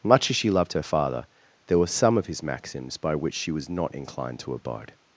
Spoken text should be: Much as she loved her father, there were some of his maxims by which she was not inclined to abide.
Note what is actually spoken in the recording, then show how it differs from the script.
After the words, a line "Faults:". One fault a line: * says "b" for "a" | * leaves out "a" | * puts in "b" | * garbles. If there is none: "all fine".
Much as she loved her father, there were some of his maxims by which she was not inclined to abide.
Faults:
all fine